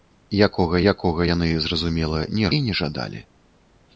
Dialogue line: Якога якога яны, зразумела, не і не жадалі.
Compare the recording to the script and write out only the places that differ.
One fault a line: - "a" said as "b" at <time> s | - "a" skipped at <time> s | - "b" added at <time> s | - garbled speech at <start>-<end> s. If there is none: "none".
none